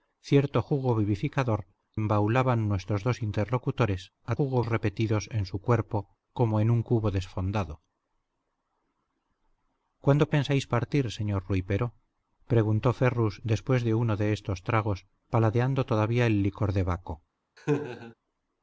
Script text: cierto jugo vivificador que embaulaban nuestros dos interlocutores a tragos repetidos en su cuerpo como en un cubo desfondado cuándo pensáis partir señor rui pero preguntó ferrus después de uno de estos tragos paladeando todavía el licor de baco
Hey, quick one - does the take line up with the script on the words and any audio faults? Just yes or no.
no